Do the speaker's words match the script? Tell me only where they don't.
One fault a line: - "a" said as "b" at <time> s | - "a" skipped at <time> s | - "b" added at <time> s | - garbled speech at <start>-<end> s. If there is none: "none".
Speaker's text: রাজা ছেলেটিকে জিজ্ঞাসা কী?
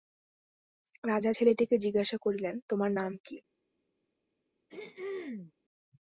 - "করিলেন তোমার নাম" added at 2.2 s